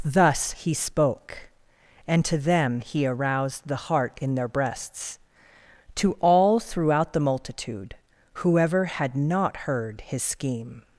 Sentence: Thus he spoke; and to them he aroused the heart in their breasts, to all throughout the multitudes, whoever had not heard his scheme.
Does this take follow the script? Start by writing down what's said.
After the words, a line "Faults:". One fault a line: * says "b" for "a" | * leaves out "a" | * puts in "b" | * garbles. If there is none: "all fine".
Thus he spoke; and to them he aroused the heart in their breasts, to all throughout the multitude, whoever had not heard his scheme.
Faults:
* says "multitude" for "multitudes"